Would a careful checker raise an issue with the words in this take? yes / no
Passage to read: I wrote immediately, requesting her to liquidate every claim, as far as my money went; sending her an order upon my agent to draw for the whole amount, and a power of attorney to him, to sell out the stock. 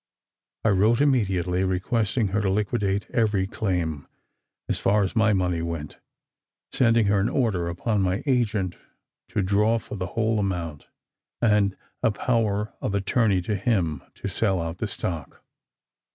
no